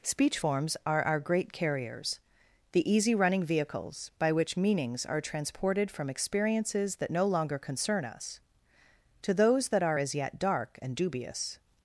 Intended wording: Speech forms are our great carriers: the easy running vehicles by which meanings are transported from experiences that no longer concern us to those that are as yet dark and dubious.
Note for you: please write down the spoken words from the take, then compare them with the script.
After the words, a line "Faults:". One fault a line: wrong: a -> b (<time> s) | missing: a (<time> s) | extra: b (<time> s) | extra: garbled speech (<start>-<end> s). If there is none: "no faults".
Speech forms are our great carriers: the easy running vehicles by which meanings are transported from experiences that no longer concern us to those that are as yet dark and dubious.
Faults:
no faults